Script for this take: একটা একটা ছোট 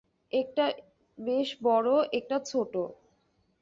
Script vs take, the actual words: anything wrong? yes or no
yes